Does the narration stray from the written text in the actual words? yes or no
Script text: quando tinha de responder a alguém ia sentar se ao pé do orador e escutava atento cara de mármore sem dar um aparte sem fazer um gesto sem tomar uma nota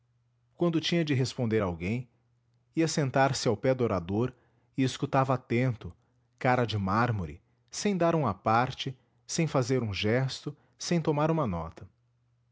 no